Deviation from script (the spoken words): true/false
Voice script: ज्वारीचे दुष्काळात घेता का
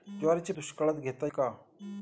false